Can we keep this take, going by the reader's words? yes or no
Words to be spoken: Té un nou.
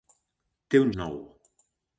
yes